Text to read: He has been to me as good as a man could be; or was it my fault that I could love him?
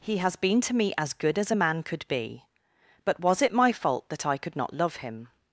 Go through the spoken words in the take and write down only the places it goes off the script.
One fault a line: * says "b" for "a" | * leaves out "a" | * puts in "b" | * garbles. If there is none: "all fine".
* says "but" for "or"
* puts in "not"